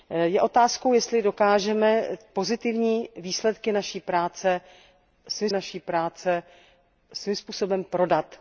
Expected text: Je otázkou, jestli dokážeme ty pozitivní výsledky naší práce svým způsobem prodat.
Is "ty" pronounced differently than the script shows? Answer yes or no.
yes